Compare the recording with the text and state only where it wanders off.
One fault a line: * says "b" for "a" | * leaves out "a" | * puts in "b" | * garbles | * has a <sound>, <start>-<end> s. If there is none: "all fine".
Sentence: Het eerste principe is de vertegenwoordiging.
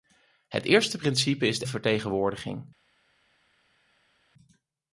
all fine